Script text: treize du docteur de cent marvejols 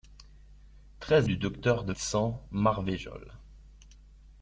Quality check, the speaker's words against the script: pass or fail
pass